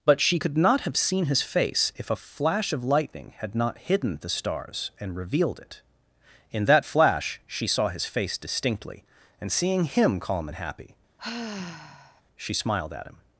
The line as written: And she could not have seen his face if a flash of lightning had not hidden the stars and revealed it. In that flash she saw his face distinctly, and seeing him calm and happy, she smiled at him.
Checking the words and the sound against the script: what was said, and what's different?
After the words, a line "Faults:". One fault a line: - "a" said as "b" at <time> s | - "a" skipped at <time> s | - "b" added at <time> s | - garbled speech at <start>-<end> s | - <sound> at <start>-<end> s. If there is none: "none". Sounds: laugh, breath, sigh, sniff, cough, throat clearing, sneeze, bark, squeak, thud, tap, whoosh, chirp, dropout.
But she could not have seen his face if a flash of lightning had not hidden the stars and revealed it. In that flash she saw his face distinctly, and seeing him calm and happy, she smiled at him.
Faults:
- "And" said as "But" at 0.0 s
- sigh at 11.2-12.2 s